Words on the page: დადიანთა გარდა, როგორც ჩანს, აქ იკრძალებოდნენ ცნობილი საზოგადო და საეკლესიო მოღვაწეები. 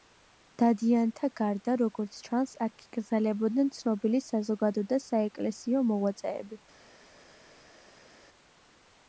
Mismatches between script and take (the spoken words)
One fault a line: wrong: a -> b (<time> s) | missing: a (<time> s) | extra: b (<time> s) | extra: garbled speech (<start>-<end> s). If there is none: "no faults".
no faults